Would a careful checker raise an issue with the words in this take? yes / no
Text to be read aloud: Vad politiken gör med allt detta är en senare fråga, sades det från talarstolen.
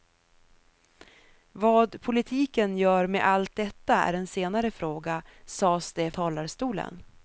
yes